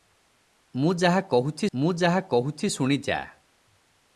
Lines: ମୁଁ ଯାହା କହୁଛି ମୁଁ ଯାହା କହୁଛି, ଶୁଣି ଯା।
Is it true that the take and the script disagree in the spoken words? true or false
false